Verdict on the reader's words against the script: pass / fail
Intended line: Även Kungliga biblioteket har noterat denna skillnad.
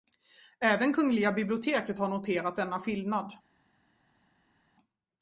pass